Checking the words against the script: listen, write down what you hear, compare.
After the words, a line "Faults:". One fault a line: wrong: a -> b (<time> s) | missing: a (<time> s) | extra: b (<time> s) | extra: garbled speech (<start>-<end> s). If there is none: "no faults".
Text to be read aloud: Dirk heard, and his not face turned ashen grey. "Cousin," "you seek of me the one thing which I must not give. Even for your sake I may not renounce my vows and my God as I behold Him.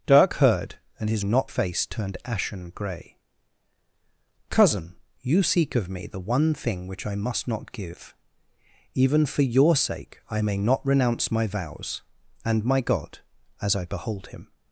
Dirk heard, and his not face turned ashen grey. "Cousin," "you seek of me the one thing which I must not give. Even for your sake I may not renounce my vows and my God as I behold Him.
Faults:
no faults